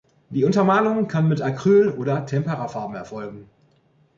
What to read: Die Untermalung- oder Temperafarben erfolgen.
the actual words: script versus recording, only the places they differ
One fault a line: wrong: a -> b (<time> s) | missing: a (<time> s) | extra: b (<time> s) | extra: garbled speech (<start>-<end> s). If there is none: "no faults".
extra: kann mit Acryl (1.1 s)